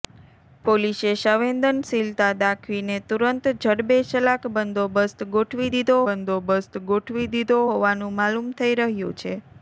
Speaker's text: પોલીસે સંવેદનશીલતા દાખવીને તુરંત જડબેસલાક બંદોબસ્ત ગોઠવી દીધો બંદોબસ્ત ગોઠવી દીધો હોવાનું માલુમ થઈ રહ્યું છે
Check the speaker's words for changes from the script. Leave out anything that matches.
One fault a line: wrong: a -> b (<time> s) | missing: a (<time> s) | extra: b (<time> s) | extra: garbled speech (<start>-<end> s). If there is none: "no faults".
no faults